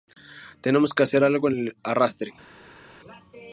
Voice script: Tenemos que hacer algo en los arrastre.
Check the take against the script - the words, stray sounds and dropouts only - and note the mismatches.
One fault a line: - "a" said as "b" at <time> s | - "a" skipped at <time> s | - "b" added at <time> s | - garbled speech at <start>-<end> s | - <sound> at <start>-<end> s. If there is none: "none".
- "los" said as "el" at 1.5 s